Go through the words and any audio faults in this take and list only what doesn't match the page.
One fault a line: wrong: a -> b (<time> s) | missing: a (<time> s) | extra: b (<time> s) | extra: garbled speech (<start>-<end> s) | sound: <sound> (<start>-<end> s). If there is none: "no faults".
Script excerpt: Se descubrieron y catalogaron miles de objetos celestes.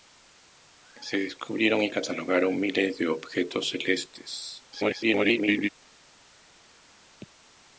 extra: garbled speech (4.7-5.7 s)